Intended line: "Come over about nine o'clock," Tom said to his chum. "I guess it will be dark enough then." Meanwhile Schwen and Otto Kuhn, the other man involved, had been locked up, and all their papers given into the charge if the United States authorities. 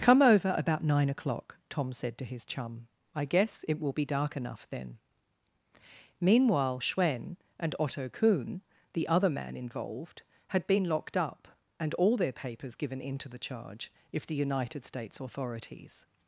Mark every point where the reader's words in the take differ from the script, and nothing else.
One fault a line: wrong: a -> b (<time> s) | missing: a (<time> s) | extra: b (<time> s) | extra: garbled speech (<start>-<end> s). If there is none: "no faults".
no faults